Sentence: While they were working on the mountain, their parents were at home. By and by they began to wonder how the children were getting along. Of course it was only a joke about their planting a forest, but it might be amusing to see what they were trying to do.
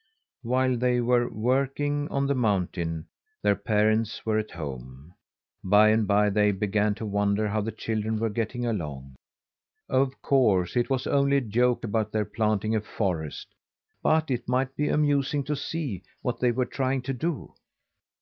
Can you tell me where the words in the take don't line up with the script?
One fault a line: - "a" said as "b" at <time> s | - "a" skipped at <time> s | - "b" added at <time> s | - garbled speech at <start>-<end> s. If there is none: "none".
none